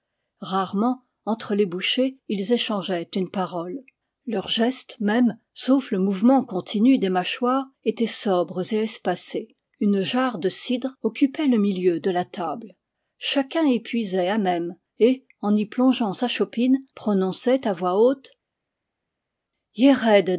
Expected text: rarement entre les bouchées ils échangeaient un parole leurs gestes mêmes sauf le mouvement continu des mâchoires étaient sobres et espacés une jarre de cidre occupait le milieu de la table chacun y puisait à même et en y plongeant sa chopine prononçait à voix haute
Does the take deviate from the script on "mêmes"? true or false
false